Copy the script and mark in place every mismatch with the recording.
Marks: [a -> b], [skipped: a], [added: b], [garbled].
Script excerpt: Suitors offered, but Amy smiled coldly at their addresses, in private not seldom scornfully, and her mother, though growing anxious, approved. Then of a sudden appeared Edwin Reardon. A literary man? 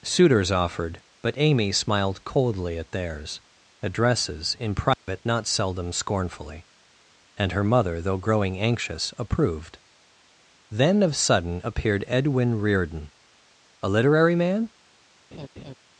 Suitors offered, but Amy smiled coldly at [their -> theirs] addresses, in private not seldom scornfully, and her mother, though growing anxious, approved. Then of [skipped: a] sudden appeared Edwin Reardon. A literary man?